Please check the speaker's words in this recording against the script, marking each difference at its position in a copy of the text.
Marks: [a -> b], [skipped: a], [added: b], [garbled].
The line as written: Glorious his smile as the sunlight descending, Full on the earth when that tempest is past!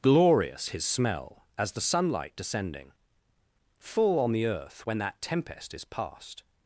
Glorious his [smile -> smell] as the sunlight descending, Full on the earth when that tempest is past!